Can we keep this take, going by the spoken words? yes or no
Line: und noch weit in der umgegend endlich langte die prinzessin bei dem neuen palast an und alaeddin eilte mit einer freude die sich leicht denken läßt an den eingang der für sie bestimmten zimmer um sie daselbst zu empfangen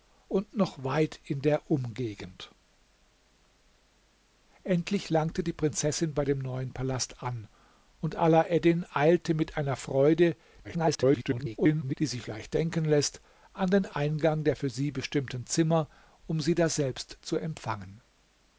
no